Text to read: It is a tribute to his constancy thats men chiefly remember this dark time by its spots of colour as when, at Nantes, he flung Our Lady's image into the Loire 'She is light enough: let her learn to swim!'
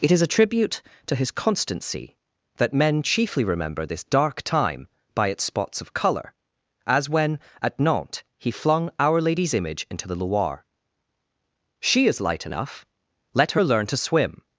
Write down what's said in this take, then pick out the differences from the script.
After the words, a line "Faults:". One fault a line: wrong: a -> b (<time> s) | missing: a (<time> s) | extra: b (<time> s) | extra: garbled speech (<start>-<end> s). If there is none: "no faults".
It is a tribute to his constancy that men chiefly remember this dark time by its spots of colour as when, at Nantes, he flung Our Lady's image into the Loire 'She is light enough: let her learn to swim!'
Faults:
wrong: thats -> that (2.6 s)